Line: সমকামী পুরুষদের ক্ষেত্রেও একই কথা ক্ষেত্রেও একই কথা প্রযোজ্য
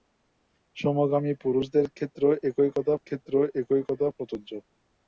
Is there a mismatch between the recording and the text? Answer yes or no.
no